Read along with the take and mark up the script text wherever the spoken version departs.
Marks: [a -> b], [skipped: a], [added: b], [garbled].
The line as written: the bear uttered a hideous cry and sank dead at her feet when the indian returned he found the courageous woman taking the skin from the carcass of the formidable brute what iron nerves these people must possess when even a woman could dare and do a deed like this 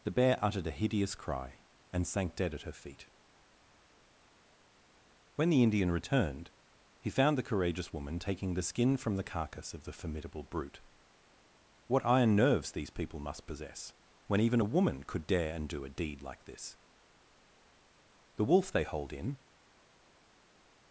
the bear uttered a hideous cry and sank dead at her feet when the indian returned he found the courageous woman taking the skin from the carcass of the formidable brute what iron nerves these people must possess when even a woman could dare and do a deed like this [added: the wolf they hold in]